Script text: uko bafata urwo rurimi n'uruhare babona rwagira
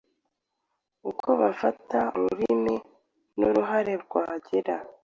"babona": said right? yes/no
no